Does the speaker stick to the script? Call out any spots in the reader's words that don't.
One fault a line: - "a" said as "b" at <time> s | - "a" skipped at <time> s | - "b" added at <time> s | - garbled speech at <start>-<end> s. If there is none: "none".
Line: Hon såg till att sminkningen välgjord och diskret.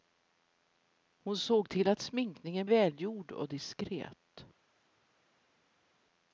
none